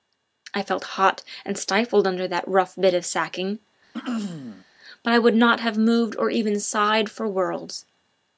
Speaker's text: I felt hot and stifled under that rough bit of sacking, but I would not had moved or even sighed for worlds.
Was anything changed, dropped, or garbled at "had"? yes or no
yes